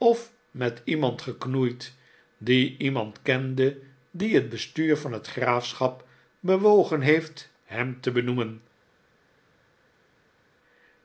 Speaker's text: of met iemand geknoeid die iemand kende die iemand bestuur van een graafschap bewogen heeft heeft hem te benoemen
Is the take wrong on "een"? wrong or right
wrong